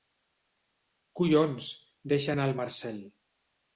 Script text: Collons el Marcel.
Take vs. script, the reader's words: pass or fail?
fail